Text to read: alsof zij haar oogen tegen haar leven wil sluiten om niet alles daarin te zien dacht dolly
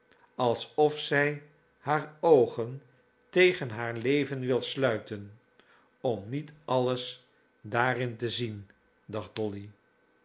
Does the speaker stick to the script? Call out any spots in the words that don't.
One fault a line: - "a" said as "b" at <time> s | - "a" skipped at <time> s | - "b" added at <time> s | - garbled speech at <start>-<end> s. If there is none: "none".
none